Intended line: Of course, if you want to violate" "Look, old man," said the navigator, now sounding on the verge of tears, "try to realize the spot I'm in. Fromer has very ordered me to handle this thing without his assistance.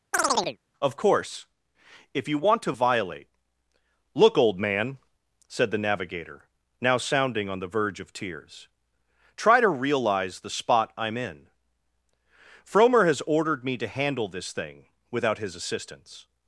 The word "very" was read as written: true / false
false